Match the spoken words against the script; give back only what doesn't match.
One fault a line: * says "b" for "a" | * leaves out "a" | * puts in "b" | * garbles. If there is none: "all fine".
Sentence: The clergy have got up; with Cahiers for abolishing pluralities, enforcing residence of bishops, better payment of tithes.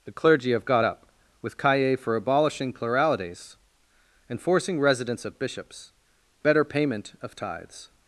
all fine